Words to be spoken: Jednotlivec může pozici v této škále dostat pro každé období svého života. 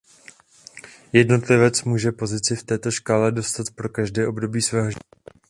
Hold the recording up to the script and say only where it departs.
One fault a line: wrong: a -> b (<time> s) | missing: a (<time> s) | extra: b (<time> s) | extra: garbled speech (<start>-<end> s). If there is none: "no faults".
no faults